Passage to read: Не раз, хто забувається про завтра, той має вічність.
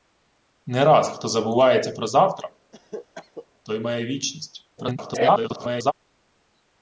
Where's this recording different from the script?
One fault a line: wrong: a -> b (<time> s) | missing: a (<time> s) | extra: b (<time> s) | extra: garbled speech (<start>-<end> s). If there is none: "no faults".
extra: garbled speech (4.8-5.9 s)